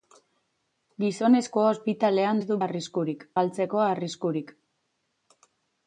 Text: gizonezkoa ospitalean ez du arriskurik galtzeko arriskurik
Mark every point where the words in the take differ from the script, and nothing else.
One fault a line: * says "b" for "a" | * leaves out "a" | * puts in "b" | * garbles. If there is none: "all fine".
all fine